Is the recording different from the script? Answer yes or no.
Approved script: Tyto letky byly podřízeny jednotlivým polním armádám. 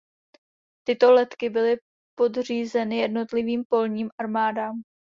no